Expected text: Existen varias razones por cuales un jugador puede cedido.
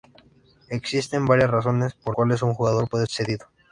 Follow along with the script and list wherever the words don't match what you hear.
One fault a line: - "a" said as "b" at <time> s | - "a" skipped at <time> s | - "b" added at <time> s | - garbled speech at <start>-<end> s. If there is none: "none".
none